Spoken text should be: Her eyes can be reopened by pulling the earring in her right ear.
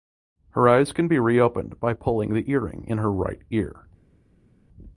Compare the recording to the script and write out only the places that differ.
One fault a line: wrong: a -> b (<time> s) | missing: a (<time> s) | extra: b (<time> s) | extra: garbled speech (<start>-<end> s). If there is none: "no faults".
no faults